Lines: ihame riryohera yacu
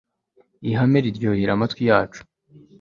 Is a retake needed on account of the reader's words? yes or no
yes